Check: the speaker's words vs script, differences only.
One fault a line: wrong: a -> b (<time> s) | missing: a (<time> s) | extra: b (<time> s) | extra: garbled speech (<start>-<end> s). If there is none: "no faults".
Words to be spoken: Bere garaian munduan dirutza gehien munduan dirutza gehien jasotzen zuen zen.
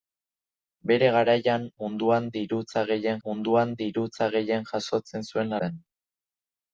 no faults